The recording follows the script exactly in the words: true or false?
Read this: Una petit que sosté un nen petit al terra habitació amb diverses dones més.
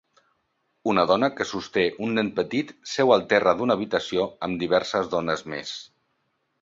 false